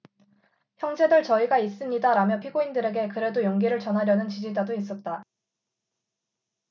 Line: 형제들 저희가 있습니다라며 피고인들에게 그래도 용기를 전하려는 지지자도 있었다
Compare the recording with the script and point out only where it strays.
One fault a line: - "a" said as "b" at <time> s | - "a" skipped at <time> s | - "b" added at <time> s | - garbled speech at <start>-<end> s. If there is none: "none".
none